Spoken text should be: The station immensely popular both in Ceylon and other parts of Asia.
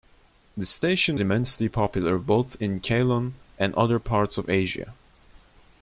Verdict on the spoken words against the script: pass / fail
pass